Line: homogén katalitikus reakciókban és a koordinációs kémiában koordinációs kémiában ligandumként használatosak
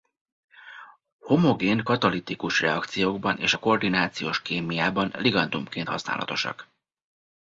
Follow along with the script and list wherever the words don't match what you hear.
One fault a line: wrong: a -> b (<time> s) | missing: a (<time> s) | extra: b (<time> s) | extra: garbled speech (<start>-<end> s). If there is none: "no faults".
missing: koordinációs kémiában (5.1 s)